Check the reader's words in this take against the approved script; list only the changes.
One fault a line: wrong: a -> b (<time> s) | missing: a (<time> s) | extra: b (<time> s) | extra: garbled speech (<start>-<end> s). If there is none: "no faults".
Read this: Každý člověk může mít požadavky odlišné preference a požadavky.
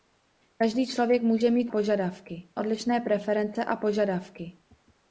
no faults